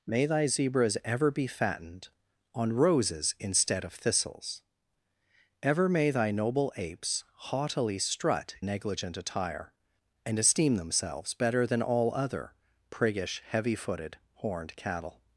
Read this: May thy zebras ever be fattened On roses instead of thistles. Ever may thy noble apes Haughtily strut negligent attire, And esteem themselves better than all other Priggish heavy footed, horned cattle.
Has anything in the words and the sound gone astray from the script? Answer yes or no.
no